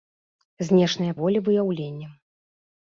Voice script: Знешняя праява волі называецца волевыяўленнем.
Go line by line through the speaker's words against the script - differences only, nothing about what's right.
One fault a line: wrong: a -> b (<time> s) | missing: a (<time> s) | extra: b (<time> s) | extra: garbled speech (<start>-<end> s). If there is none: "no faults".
missing: праява волі называецца (1.1 s)